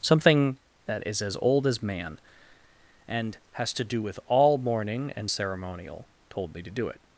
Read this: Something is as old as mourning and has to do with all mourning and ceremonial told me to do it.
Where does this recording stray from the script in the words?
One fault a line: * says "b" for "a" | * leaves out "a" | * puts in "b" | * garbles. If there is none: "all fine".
* puts in "that"
* says "man" for "mourning"